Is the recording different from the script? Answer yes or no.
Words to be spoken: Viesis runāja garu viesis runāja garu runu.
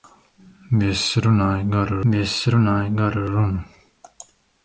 no